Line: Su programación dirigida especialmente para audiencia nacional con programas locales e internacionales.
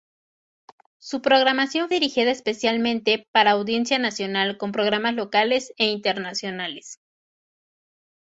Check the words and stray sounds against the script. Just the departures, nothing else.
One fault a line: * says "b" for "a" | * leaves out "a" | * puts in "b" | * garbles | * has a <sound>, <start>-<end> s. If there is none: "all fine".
all fine